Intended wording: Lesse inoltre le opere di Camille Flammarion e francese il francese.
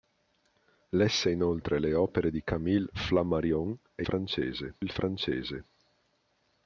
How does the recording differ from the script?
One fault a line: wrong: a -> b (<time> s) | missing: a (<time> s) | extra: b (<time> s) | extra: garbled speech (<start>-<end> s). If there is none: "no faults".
no faults